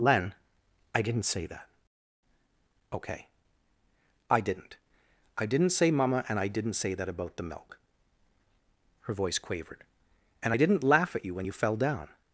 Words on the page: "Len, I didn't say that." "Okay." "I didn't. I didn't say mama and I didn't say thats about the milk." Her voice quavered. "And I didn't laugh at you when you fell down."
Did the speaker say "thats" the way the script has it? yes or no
no